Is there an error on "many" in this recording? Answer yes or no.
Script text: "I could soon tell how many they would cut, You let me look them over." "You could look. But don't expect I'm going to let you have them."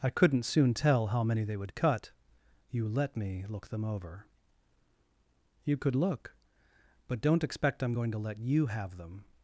no